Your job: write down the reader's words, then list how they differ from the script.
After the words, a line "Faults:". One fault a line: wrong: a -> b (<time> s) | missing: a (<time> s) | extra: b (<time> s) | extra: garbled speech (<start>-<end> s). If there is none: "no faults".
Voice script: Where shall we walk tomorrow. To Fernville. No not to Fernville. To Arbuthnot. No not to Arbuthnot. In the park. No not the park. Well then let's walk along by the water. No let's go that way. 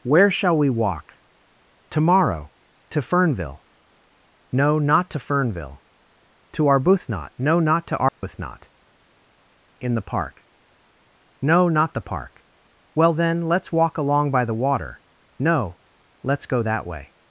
Where shall we walk tomorrow. To Fernville. No not to Fernville. To Arbuthnot. No not to Arbuthnot. In the park. No not the park. Well then let's walk along by the water. No let's go that way.
Faults:
no faults